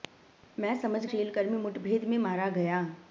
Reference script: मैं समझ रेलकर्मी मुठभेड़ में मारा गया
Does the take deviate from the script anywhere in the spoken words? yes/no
no